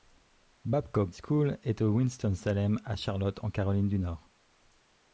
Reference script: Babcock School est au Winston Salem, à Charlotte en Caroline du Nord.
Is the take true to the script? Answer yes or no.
yes